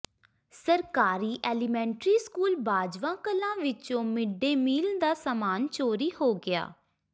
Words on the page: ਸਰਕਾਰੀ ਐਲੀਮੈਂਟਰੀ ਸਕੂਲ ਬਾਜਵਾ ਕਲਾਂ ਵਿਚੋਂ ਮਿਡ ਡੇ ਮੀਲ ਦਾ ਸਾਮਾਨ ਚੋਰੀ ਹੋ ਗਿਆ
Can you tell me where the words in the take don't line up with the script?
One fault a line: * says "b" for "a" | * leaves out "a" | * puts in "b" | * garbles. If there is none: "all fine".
all fine